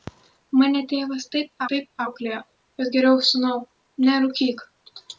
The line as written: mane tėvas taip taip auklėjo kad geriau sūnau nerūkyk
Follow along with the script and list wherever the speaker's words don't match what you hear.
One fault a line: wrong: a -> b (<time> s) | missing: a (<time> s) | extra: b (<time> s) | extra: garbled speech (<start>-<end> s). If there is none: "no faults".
no faults